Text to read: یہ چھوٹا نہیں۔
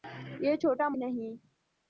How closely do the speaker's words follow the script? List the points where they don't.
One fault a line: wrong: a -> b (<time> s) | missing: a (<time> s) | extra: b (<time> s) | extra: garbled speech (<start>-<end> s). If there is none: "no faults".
no faults